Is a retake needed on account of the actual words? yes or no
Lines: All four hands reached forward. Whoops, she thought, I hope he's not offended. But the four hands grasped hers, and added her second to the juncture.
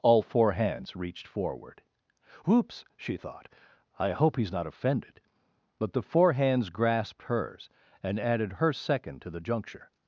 no